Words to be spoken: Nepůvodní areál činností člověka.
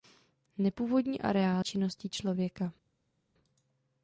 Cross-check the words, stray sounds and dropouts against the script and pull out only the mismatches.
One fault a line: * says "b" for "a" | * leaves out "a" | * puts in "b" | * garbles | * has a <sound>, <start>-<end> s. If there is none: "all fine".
all fine